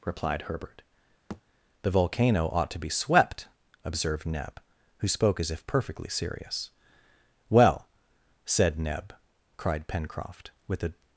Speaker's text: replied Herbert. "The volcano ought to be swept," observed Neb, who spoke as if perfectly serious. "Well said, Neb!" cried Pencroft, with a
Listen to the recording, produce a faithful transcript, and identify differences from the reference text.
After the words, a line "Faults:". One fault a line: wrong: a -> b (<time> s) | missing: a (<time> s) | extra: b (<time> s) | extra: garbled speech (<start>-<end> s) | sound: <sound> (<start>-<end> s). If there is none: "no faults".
replied Herbert. "The volcano ought to be swept," observed Neb, who spoke as if perfectly serious. "Well said, Neb!" cried Pencroft, with a
Faults:
sound: thud (1.3-1.4 s)